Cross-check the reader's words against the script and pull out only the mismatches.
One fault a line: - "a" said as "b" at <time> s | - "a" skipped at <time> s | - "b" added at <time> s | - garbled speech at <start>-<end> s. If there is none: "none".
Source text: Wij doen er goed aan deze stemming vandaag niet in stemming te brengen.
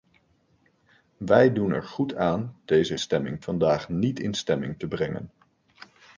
none